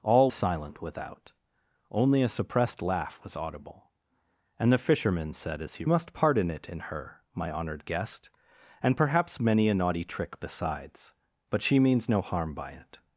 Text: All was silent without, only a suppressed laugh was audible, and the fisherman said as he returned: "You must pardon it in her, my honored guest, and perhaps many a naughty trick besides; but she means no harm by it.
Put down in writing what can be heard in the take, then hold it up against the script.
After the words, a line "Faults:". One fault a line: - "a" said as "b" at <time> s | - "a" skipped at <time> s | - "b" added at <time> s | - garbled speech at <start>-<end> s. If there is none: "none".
All silent without, only a suppressed laugh was audible, and the fisherman said as he must pardon it in her, my honored guest, and perhaps many a naughty trick besides; but she means no harm by it.
Faults:
- "was" skipped at 0.3 s
- "returned You" skipped at 5.8 s